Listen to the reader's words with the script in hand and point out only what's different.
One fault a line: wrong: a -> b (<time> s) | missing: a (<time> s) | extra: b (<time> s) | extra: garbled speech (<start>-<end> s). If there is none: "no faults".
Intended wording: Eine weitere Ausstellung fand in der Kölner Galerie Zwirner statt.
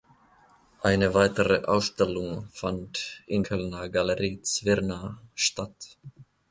missing: der (3.5 s)